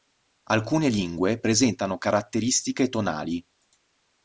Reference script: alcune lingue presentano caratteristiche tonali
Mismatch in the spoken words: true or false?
false